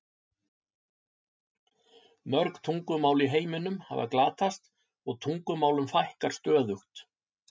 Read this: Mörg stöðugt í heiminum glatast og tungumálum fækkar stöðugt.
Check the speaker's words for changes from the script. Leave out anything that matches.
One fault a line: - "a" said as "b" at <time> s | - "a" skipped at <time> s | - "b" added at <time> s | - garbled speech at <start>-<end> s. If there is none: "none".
- "stöðugt" said as "tungumál" at 2.7 s
- "hafa" added at 3.9 s